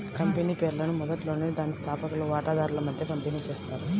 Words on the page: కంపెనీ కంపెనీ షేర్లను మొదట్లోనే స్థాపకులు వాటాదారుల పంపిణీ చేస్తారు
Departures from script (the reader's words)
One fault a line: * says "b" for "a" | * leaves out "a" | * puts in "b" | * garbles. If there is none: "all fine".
* leaves out "కంపెనీ"
* puts in "దాని"
* puts in "మధ్య"